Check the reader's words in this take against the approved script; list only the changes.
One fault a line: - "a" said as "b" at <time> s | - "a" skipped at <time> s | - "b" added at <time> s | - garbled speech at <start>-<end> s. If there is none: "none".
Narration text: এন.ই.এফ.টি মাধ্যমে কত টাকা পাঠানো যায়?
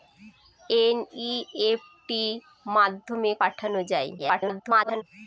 - "কত টাকা" skipped at 3.3 s
- garbled speech at 4.2-5.0 s